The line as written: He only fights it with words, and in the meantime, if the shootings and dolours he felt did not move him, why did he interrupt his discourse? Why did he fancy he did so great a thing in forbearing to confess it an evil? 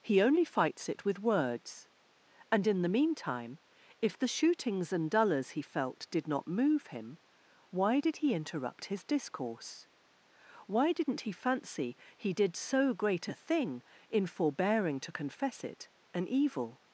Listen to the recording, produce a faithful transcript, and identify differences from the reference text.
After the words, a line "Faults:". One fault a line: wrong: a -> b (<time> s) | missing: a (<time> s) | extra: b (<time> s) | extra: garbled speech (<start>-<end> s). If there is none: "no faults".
He only fights it with words, and in the meantime, if the shootings and dolours he felt did not move him, why did he interrupt his discourse? Why didn't he fancy he did so great a thing in forbearing to confess it an evil?
Faults:
wrong: did -> didn't (10.9 s)